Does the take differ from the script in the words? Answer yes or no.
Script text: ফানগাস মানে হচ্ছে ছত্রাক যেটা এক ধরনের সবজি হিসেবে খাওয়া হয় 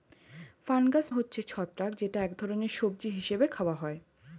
yes